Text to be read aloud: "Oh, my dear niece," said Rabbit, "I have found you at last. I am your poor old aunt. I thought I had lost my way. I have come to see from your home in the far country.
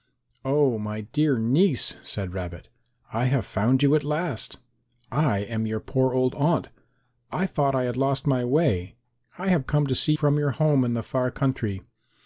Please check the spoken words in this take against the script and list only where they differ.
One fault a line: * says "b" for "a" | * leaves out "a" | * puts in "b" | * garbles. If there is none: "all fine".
all fine